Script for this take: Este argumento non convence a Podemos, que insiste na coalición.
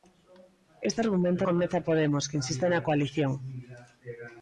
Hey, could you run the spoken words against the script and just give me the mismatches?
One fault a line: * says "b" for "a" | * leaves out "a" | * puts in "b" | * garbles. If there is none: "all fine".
* leaves out "non"